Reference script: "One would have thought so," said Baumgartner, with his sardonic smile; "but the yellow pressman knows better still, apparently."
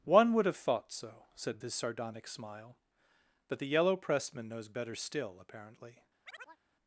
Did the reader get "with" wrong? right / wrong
wrong